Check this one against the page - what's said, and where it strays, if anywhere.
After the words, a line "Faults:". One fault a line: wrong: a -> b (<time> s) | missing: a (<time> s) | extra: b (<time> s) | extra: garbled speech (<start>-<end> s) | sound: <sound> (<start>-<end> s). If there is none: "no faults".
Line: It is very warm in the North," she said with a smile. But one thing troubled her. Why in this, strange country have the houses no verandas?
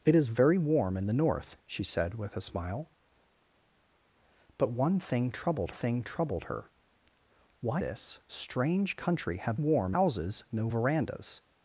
It is very warm in the North," she said with a smile. But one thing troubled thing troubled her. Why this, strange country have warm houses no verandas?
Faults:
extra: thing troubled (5.7 s)
missing: in (7.8 s)
wrong: the -> warm (9.5 s)